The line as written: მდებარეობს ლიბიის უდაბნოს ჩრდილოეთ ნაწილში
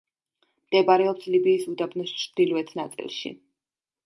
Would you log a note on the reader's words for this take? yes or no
no